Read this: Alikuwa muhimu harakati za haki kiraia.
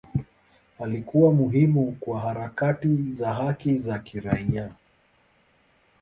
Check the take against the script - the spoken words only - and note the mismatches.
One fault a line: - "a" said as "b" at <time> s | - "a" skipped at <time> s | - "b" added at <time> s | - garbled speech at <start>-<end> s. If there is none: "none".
- "kwa" added at 2.0 s
- "za" added at 3.8 s